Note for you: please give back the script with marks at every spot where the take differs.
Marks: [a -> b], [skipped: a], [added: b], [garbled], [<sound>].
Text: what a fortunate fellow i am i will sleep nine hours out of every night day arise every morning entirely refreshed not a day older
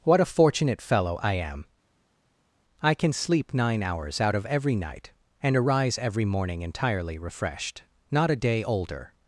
what a fortunate fellow i am i [will -> can] sleep nine hours out of every night [day -> and] arise every morning entirely refreshed not a day older